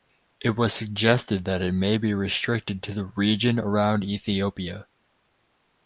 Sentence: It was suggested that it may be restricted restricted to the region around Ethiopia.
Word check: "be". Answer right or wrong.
right